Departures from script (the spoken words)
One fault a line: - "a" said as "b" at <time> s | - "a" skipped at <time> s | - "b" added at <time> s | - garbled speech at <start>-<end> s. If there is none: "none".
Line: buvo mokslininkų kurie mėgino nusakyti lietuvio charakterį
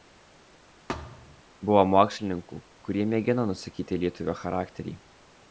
none